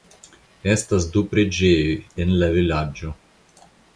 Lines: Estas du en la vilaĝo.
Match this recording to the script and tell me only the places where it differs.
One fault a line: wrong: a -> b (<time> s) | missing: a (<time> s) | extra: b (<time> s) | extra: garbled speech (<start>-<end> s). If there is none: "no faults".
extra: preĝejoj (1.3 s)